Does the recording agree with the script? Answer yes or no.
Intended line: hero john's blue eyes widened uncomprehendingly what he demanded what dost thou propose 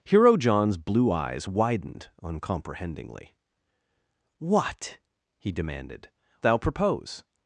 no